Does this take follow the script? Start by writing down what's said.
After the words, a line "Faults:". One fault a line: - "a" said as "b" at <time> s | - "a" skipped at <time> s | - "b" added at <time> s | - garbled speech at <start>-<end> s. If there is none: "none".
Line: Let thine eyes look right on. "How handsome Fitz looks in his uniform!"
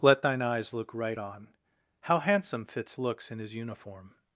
Let thine eyes look right on. "How handsome Fitz looks in his uniform!"
Faults:
none